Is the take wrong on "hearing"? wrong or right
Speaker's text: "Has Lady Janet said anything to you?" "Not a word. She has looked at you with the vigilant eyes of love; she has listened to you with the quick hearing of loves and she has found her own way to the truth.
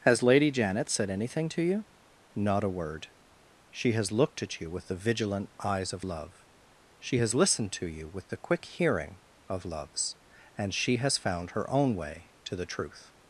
right